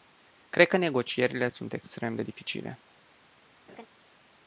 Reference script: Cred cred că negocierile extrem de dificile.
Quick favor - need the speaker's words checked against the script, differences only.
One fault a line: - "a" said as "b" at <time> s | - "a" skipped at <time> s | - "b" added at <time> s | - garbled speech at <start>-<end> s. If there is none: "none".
- "cred" skipped at 0.7 s
- "sunt" added at 1.5 s